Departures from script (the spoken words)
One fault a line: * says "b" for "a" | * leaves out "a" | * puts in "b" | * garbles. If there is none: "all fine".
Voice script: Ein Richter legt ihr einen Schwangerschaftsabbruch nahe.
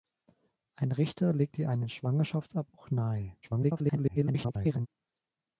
* garbles